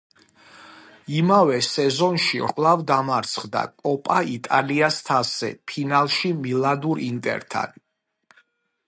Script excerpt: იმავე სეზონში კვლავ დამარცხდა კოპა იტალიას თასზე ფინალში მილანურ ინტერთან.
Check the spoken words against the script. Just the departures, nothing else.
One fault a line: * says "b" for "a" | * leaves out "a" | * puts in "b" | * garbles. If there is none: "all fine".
all fine